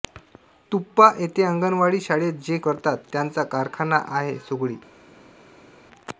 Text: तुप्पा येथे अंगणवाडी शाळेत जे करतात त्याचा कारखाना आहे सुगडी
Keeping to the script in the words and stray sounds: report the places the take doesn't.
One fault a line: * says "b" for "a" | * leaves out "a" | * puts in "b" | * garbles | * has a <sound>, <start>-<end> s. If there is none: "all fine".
all fine